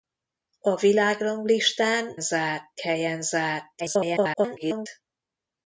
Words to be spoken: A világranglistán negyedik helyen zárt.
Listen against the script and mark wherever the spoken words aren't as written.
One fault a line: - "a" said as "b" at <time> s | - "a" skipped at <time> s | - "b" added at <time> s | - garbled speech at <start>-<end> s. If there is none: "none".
- "negyedik" said as "zárt" at 2.2 s
- garbled speech at 3.8-4.9 s